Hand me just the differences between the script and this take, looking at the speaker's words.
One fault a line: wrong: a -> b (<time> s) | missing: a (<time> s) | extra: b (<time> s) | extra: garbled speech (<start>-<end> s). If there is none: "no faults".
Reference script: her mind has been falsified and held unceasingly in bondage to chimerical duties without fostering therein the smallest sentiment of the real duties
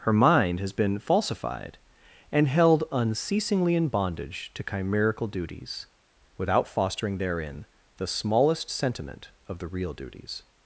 no faults